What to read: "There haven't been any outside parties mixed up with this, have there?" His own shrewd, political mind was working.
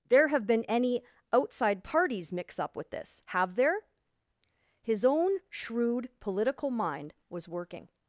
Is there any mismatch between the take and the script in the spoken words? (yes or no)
yes